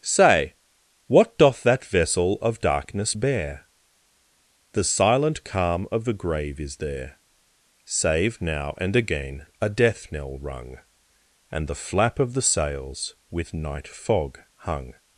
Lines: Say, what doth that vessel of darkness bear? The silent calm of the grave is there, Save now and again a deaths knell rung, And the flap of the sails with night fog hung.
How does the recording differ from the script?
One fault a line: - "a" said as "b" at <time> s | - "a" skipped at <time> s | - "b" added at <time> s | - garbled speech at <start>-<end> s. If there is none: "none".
- "deaths" said as "death" at 9.7 s